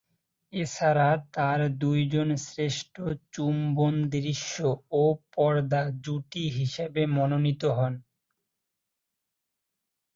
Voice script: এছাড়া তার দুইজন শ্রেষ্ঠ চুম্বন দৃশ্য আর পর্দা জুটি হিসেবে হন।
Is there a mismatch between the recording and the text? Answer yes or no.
yes